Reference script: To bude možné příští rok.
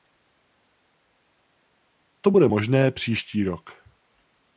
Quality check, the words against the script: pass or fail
pass